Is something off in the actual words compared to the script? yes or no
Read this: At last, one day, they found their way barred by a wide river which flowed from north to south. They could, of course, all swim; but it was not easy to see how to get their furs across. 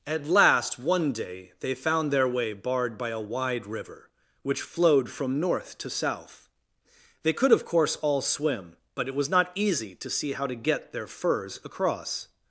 no